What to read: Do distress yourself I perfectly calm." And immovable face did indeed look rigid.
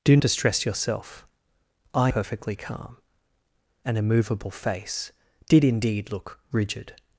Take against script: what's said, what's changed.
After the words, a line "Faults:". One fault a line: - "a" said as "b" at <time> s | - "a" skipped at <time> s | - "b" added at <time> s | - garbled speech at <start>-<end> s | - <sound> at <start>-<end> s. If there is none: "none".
Do distress yourself I perfectly calm." And immovable face did indeed look rigid.
Faults:
none